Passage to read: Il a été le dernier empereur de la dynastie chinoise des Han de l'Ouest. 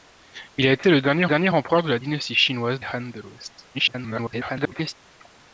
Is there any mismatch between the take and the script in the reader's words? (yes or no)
yes